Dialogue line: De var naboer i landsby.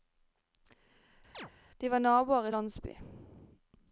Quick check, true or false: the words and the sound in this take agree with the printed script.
false